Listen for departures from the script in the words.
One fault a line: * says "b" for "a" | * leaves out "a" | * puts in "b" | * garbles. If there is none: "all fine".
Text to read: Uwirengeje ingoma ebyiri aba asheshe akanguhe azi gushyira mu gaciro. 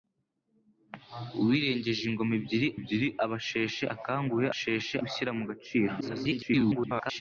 * puts in "ebyiri"
* says "asheshe" for "azi"
* garbles